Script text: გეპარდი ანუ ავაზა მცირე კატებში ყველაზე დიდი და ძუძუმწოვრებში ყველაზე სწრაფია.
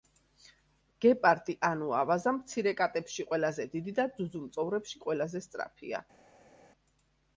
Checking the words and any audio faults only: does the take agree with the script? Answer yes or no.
yes